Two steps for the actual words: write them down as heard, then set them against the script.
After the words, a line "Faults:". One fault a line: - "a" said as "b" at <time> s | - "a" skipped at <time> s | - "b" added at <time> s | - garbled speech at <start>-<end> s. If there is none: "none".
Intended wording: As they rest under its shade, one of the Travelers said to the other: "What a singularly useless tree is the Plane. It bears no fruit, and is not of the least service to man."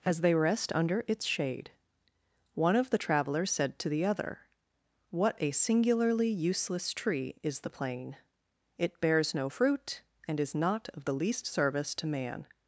As they rest under its shade, one of the Travelers said to the other: "What a singularly useless tree is the Plane. It bears no fruit, and is not of the least service to man."
Faults:
none